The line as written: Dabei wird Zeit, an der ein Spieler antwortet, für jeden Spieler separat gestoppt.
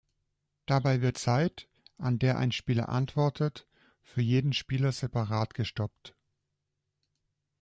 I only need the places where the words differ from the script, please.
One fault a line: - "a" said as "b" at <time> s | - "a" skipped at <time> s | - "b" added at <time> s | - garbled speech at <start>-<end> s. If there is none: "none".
none